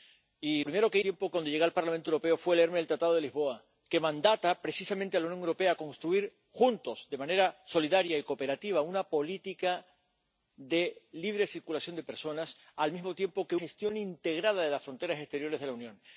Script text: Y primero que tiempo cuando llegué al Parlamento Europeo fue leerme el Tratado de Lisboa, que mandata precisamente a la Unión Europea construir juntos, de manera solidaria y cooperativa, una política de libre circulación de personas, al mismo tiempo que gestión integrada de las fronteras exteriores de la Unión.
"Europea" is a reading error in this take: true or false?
false